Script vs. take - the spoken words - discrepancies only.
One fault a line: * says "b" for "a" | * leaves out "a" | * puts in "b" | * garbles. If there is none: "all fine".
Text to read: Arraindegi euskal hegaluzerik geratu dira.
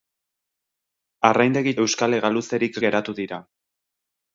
all fine